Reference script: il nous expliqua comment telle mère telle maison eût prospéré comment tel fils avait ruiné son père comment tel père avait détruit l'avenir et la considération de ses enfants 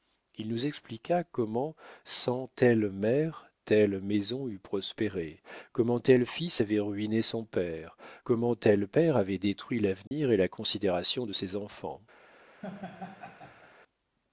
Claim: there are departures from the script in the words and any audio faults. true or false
true